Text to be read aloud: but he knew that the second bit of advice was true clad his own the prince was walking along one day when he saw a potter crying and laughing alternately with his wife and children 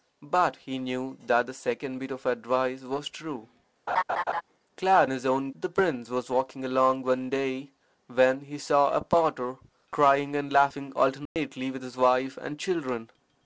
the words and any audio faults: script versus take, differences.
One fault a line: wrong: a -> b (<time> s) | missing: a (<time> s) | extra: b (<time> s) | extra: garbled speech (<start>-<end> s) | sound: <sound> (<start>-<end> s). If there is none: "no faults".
sound: laugh (3.9-4.4 s)
sound: dropout (11.3-11.4 s)